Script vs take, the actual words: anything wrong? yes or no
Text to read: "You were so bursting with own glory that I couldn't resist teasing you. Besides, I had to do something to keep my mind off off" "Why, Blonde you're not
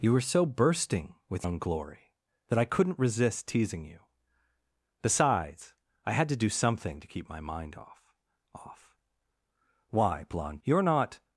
no